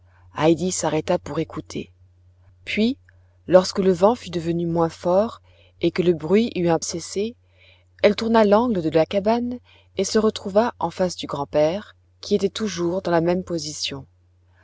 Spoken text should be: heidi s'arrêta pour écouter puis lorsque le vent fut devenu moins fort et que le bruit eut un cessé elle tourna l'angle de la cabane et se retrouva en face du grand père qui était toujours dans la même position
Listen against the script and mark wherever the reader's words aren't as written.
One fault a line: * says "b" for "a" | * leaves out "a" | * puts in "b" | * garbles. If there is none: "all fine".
all fine